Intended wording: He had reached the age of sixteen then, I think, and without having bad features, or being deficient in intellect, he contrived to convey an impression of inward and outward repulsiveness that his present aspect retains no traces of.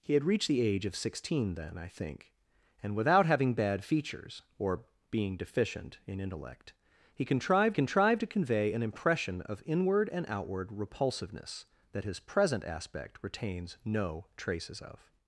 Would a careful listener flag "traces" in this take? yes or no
no